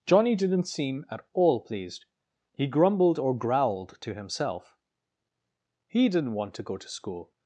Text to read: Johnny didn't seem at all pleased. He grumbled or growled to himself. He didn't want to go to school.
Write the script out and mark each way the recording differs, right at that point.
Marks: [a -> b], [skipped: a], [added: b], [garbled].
Johnny didn't seem at all pleased. He grumbled or growled to himself. He didn't want to go to school.